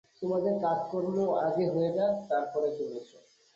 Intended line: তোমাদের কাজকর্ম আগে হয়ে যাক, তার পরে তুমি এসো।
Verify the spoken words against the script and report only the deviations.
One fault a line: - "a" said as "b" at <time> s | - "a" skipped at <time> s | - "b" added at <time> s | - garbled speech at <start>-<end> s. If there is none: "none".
none